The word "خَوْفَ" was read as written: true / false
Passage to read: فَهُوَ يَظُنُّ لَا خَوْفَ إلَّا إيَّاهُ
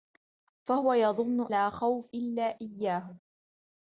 true